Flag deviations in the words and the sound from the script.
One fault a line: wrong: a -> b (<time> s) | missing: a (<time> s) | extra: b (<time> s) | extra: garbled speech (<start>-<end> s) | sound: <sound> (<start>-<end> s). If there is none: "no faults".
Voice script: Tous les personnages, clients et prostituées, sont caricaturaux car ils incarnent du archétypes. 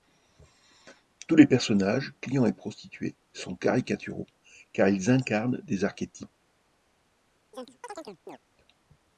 wrong: du -> des (5.6 s)
sound: chirp (7.5-8.4 s)